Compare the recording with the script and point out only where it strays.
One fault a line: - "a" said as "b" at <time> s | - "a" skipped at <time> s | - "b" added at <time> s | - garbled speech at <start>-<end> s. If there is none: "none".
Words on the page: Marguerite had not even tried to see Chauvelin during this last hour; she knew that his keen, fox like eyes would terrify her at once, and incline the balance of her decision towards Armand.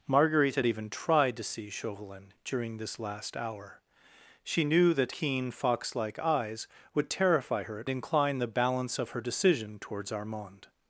- "not" skipped at 0.7 s
- "his" skipped at 5.1 s
- "once and" skipped at 7.9 s